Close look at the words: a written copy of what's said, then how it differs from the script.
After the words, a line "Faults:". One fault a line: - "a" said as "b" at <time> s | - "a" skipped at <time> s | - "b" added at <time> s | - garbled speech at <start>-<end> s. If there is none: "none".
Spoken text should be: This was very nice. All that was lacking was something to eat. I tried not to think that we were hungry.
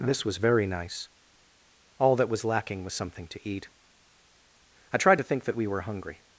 This was very nice. All that was lacking was something to eat. I tried to think that we were hungry.
Faults:
- "not" skipped at 5.2 s